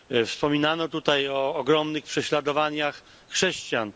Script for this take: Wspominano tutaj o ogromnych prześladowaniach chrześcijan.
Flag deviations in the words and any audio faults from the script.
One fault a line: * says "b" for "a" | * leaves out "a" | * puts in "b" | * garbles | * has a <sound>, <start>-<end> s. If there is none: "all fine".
all fine